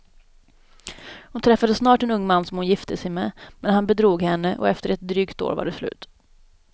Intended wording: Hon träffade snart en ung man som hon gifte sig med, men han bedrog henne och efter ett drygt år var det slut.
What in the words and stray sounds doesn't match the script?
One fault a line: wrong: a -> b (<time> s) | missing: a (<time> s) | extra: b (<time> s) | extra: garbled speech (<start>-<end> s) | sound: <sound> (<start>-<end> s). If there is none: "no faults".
no faults